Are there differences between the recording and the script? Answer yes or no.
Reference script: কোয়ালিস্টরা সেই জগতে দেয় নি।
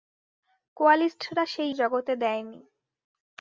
no